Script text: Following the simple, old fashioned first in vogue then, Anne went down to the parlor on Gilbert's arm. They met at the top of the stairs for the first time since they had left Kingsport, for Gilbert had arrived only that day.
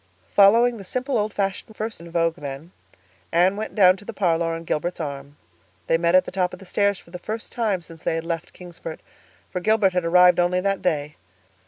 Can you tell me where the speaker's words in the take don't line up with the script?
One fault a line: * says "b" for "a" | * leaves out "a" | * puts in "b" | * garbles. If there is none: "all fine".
all fine